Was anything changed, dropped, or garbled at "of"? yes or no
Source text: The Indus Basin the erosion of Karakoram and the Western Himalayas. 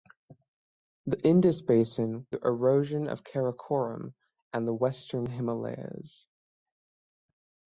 no